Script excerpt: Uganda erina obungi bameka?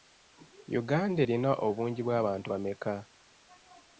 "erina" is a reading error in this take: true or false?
false